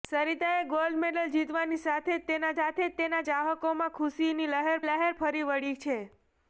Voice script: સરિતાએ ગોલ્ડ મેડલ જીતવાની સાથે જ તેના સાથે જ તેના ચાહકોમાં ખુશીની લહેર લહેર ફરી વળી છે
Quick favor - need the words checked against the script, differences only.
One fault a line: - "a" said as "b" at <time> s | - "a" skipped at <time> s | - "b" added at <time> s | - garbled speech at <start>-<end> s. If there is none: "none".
none